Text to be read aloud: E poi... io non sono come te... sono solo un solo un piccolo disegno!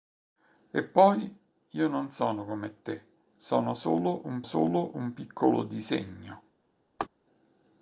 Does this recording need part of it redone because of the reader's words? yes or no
no